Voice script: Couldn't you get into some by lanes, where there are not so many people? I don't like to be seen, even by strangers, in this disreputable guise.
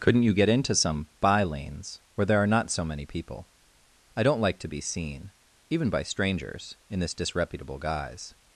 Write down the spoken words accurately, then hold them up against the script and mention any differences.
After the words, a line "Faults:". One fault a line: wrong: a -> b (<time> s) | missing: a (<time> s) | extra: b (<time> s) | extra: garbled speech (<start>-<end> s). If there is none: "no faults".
Couldn't you get into some by lanes, where there are not so many people? I don't like to be seen, even by strangers, in this disreputable guise.
Faults:
no faults